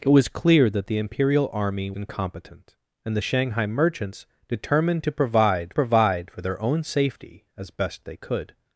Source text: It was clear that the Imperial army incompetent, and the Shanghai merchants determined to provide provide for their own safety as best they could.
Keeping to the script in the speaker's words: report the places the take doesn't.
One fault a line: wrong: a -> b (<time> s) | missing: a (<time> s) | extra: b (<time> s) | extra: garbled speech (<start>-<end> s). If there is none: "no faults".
no faults